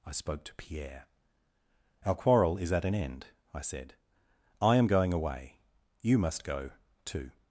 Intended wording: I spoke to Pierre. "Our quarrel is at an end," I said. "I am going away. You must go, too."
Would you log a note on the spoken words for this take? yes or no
no